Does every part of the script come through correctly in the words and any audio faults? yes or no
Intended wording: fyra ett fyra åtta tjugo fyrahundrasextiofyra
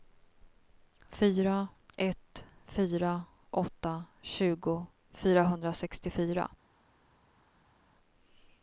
yes